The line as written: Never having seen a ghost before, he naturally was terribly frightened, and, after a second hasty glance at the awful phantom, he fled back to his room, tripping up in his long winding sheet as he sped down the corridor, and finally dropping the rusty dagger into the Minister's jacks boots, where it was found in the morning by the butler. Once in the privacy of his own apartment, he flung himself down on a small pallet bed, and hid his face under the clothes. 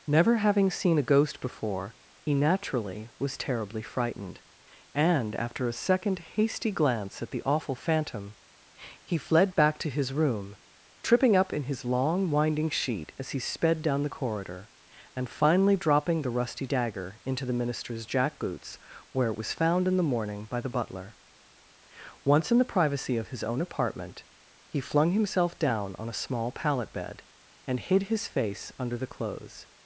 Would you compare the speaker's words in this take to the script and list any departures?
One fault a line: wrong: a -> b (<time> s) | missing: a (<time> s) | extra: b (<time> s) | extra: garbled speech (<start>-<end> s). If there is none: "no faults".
wrong: jacks -> jack (18.1 s)